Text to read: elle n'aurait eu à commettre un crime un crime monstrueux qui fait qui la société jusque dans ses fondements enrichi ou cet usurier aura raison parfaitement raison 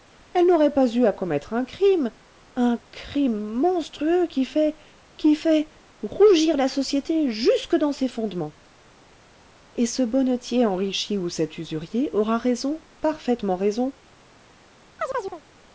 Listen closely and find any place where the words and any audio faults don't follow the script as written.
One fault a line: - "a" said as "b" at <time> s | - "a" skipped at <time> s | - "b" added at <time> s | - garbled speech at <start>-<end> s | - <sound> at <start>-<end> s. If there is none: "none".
- "pas" added at 0.7 s
- "fait rougir" added at 5.3 s
- "et ce bonnetier" added at 9.7 s
- chirp at 15.0-15.4 s